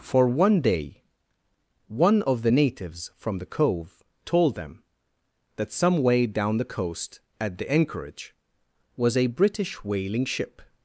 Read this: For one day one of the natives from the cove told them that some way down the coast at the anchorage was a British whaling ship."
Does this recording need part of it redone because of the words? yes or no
no